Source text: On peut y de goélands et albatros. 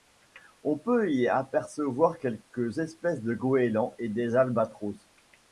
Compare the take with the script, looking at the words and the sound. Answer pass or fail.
fail